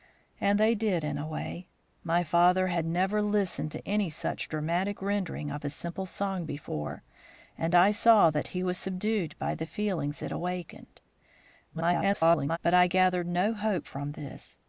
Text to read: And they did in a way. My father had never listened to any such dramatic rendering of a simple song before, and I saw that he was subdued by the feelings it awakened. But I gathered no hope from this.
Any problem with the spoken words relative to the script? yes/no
yes